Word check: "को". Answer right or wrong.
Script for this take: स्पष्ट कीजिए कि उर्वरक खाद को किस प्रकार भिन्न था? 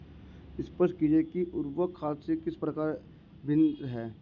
wrong